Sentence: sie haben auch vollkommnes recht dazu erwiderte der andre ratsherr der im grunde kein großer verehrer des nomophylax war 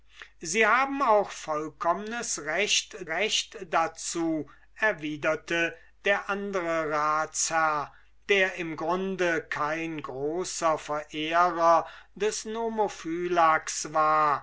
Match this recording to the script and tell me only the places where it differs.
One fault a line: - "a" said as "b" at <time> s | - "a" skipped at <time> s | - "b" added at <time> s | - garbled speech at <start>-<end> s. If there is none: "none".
- "recht" added at 3.1 s